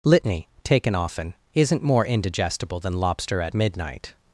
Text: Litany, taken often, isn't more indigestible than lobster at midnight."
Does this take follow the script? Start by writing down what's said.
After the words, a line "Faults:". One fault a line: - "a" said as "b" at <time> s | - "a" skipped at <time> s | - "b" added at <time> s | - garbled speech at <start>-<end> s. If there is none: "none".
Litany, taken often, isn't more indigestible than lobster at midnight."
Faults:
none